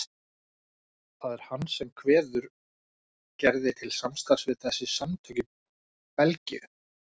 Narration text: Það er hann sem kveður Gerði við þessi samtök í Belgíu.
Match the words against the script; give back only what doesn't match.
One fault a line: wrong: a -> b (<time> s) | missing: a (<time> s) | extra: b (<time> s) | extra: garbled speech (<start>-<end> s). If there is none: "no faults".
extra: til samstarfs (3.8 s)